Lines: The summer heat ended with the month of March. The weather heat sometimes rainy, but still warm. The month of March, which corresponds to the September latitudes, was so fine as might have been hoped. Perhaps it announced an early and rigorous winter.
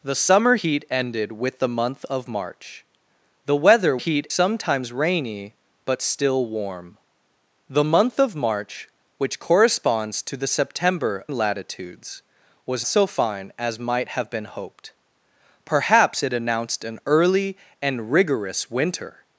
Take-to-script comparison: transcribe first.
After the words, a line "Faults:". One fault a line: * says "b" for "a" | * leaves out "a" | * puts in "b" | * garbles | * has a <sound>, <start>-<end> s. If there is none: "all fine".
The summer heat ended with the month of March. The weather heat sometimes rainy, but still warm. The month of March, which corresponds to the September latitudes, was so fine as might have been hoped. Perhaps it announced an early and rigorous winter.
Faults:
all fine